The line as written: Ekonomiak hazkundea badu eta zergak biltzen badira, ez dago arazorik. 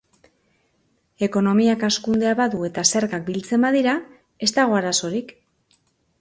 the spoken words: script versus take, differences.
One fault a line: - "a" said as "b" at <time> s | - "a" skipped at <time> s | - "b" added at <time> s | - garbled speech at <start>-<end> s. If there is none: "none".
none